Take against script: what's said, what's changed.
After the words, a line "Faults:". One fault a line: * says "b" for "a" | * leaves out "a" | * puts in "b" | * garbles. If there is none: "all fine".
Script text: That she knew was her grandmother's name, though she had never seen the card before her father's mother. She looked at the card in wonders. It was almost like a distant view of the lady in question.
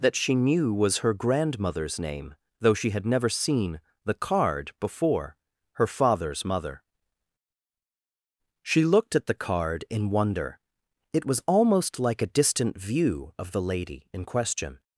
That she knew was her grandmother's name, though she had never seen the card before her father's mother. She looked at the card in wonder. It was almost like a distant view of the lady in question.
Faults:
* says "wonder" for "wonders"